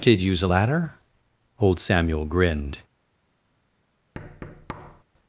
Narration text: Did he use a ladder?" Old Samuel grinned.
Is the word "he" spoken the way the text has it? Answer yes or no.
no